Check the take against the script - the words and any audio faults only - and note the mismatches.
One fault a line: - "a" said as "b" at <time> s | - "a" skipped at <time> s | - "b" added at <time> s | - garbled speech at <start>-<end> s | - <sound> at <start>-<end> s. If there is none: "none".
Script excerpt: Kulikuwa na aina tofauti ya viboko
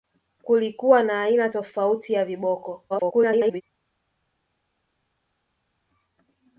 - garbled speech at 2.9-3.6 s